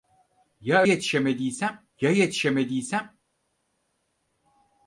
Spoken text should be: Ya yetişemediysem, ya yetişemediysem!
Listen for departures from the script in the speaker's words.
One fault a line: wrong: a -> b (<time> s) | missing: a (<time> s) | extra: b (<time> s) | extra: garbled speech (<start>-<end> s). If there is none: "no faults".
no faults